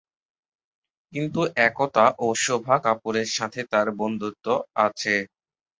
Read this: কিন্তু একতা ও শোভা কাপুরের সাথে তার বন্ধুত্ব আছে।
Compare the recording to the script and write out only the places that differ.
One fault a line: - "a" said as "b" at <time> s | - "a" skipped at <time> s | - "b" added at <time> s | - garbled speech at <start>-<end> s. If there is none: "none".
none